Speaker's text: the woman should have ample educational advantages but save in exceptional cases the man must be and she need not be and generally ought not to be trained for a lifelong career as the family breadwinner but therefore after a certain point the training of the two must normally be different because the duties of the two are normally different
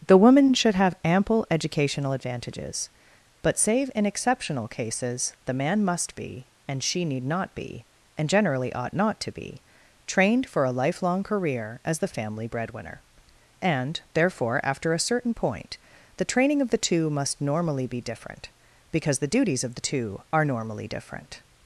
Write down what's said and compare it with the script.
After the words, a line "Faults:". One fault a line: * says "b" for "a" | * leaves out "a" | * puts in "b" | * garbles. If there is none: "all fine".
the woman should have ample educational advantages but save in exceptional cases the man must be and she need not be and generally ought not to be trained for a lifelong career as the family breadwinner and therefore after a certain point the training of the two must normally be different because the duties of the two are normally different
Faults:
* says "and" for "but"